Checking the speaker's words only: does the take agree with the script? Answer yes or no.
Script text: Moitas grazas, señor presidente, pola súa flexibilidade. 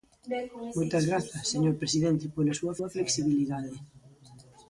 no